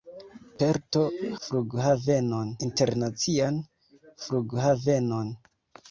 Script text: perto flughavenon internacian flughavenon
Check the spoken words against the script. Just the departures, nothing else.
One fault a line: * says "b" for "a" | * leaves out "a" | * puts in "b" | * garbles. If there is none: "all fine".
all fine